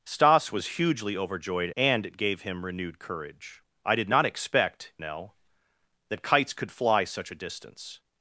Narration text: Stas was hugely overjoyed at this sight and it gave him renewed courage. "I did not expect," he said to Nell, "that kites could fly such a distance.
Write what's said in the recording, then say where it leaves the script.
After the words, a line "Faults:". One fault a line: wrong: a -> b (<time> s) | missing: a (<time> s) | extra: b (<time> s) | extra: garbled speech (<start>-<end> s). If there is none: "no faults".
Stas was hugely overjoyed and it gave him renewed courage. "I did not expect," Nell, "that kites could fly such a distance.
Faults:
missing: at this sight (1.7 s)
missing: he said to (4.9 s)